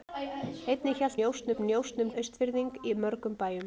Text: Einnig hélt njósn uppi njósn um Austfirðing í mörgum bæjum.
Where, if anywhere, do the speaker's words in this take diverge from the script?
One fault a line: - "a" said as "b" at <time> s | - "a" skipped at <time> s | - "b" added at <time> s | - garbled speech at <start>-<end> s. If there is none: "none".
none